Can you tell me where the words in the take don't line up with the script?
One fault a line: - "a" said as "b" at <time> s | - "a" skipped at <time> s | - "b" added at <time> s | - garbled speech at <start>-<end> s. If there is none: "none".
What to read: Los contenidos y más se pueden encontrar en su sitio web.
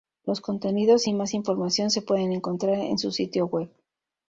- "información" added at 1.3 s